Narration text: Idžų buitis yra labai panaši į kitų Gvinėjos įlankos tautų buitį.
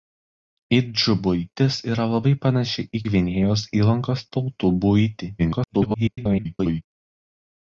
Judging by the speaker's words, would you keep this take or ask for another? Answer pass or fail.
fail